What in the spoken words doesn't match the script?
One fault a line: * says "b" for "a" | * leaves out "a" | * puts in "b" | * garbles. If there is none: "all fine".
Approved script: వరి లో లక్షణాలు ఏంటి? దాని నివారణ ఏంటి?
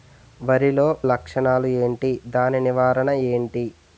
all fine